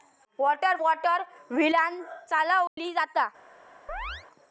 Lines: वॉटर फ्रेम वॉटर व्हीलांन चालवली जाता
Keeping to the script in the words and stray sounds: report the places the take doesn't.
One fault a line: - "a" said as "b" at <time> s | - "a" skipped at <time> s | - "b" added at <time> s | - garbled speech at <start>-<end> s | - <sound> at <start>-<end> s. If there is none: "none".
- "फ्रेम" skipped at 0.8 s
- dropout at 2.7-2.8 s
- chirp at 3.9-4.3 s